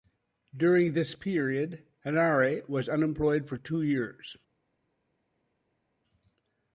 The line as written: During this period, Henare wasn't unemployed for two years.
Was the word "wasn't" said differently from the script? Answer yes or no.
yes